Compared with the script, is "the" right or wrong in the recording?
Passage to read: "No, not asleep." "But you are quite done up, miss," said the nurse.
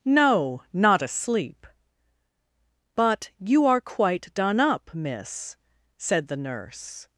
right